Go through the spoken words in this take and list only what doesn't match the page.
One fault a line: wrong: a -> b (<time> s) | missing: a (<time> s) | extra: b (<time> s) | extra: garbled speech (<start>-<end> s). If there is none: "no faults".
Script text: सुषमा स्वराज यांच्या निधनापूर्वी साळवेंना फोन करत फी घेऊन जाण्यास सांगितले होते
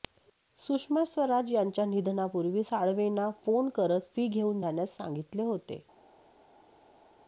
no faults